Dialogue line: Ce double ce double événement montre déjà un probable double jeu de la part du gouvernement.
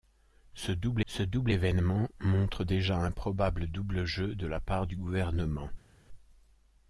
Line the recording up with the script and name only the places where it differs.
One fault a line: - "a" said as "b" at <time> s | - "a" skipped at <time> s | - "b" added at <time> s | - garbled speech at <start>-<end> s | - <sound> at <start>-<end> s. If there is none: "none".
none